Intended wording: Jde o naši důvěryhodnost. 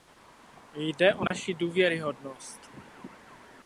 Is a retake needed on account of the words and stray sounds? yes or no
yes